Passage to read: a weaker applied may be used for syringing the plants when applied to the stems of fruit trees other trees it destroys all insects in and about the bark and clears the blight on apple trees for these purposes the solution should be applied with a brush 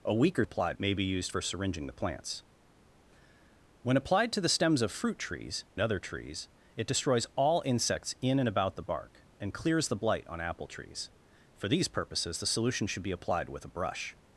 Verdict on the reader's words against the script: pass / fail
pass